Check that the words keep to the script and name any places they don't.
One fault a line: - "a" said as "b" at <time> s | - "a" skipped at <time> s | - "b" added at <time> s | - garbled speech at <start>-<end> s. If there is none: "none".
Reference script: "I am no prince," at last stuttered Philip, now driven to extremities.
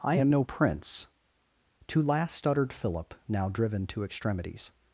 - "at" said as "to" at 1.9 s